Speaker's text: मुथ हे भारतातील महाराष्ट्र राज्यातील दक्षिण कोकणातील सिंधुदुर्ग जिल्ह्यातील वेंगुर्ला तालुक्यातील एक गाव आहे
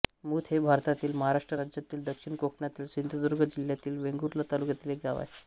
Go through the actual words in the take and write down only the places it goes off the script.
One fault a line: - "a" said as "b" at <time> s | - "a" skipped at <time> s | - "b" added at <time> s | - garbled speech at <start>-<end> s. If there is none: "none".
none